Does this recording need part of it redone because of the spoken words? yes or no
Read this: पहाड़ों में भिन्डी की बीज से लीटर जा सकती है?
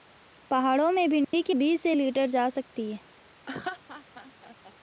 no